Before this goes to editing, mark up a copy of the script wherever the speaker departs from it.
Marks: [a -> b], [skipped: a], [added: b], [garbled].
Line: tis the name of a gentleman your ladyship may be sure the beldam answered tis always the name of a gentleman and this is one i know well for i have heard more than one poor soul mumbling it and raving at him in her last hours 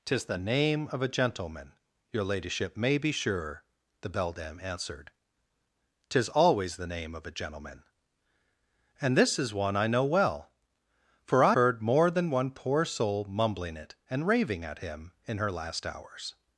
tis the name of a gentleman your ladyship may be sure the beldam answered tis always the name of a gentleman and this is one i know well for i [skipped: have] heard more than one poor soul mumbling it and raving at him in her last hours